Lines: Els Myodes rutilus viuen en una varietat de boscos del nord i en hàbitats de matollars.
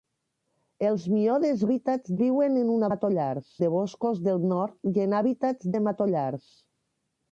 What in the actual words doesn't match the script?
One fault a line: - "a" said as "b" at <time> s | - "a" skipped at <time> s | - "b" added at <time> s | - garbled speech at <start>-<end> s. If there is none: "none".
- "rutilus" said as "hàbitats" at 1.7 s
- "varietat" said as "matollars" at 2.9 s